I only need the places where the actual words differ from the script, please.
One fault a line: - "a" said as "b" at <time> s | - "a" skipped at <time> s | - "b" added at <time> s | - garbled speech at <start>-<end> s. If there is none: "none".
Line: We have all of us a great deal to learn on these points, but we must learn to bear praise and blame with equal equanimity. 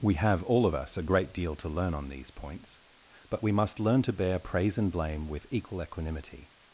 none